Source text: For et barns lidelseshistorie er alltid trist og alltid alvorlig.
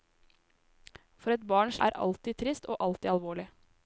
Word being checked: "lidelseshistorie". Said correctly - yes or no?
no